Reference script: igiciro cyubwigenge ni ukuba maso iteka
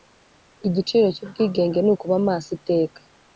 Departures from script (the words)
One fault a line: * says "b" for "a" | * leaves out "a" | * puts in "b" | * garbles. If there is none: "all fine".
all fine